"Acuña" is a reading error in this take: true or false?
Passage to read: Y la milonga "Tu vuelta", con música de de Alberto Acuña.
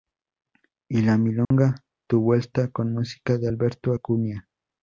false